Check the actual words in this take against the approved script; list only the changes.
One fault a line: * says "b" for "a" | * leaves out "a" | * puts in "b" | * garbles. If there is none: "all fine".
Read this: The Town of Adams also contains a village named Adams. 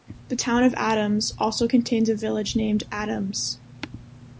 all fine